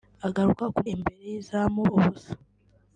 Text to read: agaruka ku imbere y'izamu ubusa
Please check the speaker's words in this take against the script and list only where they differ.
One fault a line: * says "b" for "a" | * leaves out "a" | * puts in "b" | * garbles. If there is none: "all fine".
all fine